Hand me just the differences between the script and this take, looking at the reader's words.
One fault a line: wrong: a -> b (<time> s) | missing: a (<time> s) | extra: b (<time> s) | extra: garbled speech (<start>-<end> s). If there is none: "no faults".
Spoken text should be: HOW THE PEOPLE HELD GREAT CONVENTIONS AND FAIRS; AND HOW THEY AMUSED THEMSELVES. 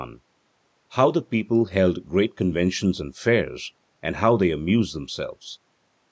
no faults